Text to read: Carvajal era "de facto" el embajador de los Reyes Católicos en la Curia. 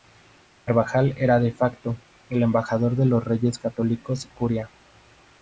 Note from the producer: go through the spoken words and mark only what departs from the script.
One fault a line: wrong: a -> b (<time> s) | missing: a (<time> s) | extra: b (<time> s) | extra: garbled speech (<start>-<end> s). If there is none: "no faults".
missing: en la (4.3 s)